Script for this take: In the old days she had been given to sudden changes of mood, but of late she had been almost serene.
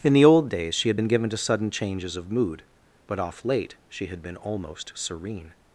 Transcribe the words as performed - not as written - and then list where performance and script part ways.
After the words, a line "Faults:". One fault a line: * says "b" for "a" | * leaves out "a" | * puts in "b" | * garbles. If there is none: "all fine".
In the old days she had been given to sudden changes of mood, but off late she had been almost serene.
Faults:
* says "off" for "of"